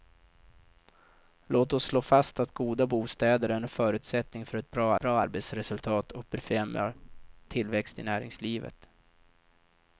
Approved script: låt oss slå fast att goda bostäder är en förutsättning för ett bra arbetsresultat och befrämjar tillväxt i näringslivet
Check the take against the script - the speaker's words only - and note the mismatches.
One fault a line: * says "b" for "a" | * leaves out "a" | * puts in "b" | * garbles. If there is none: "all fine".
* puts in "bra"